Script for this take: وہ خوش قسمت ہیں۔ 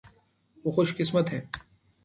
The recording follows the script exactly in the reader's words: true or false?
true